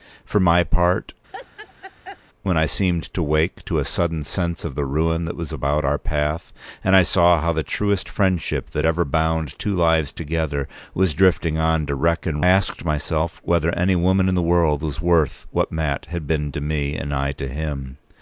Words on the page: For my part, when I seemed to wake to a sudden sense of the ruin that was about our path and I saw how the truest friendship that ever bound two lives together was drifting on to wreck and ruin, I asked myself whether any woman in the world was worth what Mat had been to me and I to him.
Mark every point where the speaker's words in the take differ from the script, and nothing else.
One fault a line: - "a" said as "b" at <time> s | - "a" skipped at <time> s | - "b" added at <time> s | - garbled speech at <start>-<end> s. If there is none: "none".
- "ruin I" skipped at 12.4 s